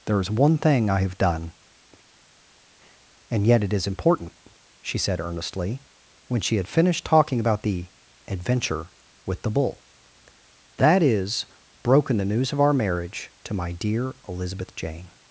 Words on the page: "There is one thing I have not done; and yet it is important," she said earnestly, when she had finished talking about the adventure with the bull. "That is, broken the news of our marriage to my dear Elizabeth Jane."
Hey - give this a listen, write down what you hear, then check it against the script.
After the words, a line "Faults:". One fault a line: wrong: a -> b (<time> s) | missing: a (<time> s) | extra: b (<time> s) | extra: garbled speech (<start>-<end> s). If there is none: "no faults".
"There is one thing I have done; and yet it is important," she said earnestly, when she had finished talking about the adventure with the bull. "That is, broken the news of our marriage to my dear Elizabeth Jane."
Faults:
missing: not (1.2 s)